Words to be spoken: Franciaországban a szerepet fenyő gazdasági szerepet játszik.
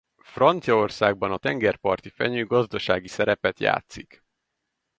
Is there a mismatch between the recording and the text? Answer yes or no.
yes